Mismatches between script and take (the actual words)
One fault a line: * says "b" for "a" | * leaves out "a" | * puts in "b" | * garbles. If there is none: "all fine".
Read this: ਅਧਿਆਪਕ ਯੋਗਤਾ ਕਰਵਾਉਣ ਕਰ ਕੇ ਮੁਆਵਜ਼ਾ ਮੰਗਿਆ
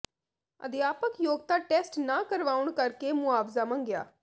* puts in "ਟੈਸਟ ਨਾ"